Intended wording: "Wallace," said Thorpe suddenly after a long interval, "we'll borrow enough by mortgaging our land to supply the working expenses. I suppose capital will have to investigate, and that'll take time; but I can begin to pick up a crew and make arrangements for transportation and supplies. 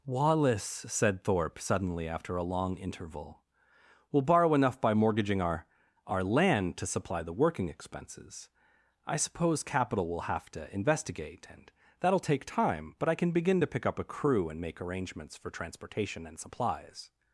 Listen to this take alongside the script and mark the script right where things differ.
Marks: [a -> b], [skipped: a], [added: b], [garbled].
"Wallace," said Thorpe suddenly after a long interval, "we'll borrow enough by mortgaging our [added: our] land to supply the working expenses. I suppose capital will have to investigate, and that'll take time; but I can begin to pick up a crew and make arrangements for transportation and supplies.